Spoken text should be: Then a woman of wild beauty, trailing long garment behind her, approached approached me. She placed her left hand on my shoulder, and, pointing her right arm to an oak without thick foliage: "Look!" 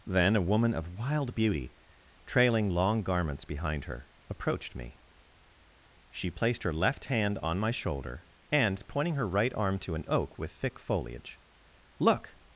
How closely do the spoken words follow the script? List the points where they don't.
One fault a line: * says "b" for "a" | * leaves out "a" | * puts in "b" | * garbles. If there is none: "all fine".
* says "garments" for "garment"
* leaves out "approached"
* says "with" for "without"